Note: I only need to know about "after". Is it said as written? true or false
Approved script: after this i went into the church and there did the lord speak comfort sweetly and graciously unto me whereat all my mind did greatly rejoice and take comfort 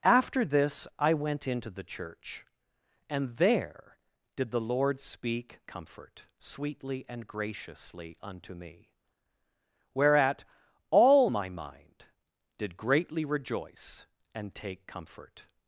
true